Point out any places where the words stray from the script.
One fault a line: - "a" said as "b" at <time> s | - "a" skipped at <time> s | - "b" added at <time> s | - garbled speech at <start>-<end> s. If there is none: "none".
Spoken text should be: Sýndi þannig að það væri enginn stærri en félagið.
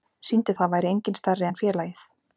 - "þannig" skipped at 0.6 s